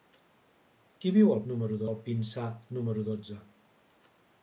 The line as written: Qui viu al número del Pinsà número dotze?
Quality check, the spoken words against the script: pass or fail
pass